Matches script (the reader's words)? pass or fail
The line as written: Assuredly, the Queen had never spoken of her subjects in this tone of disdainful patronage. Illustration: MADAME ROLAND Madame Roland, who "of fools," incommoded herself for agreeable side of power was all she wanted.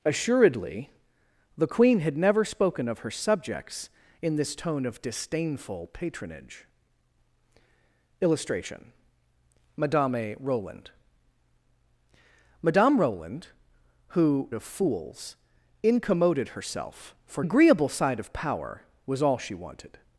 pass